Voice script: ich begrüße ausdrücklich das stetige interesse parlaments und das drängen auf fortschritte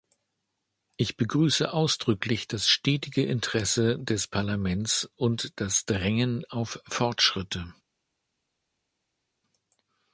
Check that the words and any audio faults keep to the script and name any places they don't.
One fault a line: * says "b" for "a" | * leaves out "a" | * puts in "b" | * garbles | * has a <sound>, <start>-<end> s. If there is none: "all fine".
* puts in "des"